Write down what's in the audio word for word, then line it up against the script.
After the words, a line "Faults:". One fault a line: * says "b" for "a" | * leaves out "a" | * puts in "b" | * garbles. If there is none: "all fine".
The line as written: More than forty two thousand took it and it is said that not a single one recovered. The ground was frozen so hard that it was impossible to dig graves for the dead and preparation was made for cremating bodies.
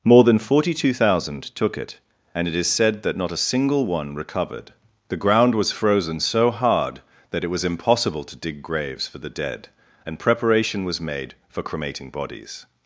More than forty two thousand took it and it is said that not a single one recovered. The ground was frozen so hard that it was impossible to dig graves for the dead and preparation was made for cremating bodies.
Faults:
all fine